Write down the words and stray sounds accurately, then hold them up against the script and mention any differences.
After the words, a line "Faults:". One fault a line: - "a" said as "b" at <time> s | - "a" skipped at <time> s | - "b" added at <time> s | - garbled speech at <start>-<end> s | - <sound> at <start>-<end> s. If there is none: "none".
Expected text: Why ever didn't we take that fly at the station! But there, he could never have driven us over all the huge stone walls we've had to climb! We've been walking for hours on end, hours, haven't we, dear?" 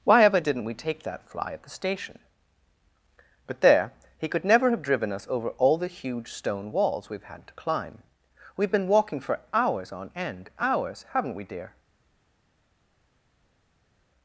Why ever didn't we take that fly at the station! But there, he could never have driven us over all the huge stone walls we've had to climb! We've been walking for hours on end, hours, haven't we, dear?"
Faults:
none